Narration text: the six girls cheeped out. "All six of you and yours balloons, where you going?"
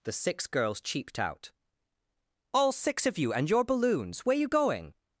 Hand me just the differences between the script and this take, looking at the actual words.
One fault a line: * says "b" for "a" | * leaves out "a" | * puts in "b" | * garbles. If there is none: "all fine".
* says "your" for "yours"